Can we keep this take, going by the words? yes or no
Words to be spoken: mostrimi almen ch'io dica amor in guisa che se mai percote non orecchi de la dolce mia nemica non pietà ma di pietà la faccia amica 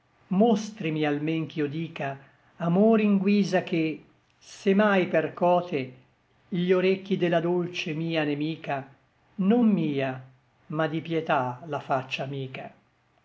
no